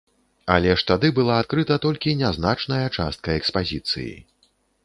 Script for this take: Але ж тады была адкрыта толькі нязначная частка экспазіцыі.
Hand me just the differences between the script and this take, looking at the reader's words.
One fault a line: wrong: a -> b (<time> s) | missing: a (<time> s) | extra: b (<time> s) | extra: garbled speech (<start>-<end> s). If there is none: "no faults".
no faults